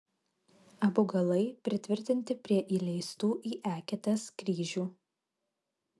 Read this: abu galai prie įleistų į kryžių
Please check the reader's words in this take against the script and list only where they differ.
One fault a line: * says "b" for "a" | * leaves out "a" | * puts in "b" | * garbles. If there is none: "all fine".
* puts in "pritvirtinti"
* puts in "eketes"